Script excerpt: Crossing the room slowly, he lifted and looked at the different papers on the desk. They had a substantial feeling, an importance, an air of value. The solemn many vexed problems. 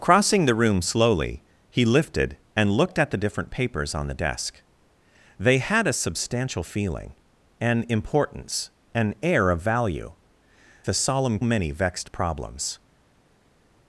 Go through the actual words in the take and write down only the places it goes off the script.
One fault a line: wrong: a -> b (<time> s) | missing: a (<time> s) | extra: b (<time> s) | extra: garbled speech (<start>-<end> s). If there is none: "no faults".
no faults